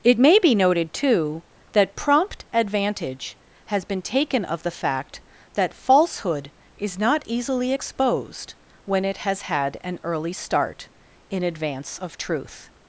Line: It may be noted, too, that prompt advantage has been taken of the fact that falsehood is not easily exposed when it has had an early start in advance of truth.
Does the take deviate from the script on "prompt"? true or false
false